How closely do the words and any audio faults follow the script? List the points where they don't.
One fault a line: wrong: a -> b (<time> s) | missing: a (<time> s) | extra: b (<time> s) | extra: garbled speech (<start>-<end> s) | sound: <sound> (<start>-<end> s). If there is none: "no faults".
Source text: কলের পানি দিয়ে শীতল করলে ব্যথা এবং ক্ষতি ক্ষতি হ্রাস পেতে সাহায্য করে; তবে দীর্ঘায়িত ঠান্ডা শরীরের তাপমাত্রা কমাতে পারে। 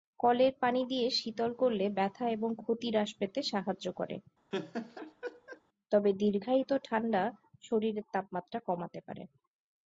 missing: ক্ষতি (2.9 s)
sound: laugh (4.5-5.6 s)